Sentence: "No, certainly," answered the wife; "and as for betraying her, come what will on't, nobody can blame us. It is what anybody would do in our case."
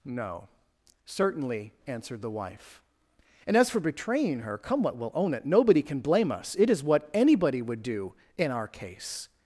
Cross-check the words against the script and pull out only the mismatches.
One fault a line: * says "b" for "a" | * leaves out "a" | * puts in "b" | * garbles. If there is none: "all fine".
* says "own it" for "on't"